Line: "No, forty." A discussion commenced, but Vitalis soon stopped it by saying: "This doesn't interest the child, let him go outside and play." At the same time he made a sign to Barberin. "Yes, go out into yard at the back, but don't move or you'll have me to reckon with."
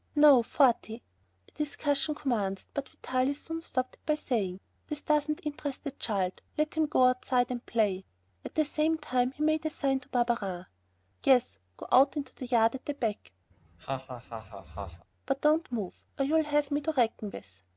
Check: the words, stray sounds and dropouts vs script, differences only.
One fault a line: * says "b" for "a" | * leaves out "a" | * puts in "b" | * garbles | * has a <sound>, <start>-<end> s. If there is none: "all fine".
* puts in "the"
* has a laugh, 13.5-15.1 s